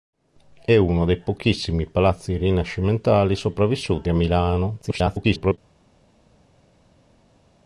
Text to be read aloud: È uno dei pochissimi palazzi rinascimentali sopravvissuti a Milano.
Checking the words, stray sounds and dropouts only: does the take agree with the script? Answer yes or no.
no